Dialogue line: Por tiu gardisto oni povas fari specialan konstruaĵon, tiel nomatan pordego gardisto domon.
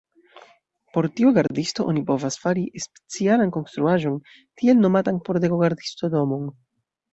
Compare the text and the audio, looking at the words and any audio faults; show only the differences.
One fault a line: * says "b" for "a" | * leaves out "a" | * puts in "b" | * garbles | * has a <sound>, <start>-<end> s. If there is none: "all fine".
all fine